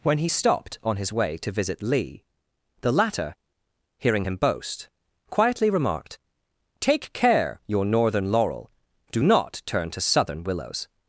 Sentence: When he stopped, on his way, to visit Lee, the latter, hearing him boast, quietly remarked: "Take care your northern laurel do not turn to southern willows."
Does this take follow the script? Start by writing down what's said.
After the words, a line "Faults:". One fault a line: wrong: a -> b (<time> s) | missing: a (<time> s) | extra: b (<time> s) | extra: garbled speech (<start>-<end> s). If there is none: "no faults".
When he stopped, on his way, to visit Lee, the latter, hearing him boast, quietly remarked: "Take care your northern laurel do not turn to southern willows."
Faults:
no faults